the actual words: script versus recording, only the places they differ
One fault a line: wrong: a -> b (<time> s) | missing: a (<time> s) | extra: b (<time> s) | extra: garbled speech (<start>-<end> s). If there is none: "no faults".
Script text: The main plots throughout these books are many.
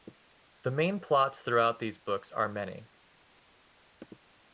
no faults